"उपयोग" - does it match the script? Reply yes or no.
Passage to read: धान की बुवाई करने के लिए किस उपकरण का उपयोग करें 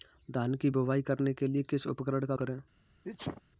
no